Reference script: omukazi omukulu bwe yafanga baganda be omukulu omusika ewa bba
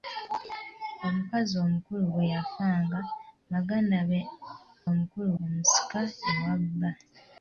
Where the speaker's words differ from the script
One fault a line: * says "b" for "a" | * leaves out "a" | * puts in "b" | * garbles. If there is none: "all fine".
all fine